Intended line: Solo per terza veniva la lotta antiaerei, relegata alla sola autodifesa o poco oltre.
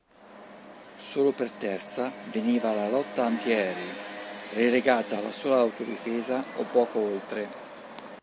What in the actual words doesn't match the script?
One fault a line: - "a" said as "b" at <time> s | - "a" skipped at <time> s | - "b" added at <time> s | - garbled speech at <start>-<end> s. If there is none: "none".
none